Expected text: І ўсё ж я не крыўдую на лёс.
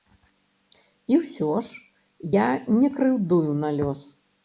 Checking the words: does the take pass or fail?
pass